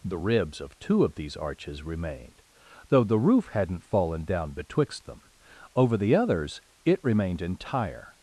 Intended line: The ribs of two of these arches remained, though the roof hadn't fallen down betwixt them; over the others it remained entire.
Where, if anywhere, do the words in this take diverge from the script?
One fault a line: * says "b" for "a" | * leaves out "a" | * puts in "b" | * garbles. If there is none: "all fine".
all fine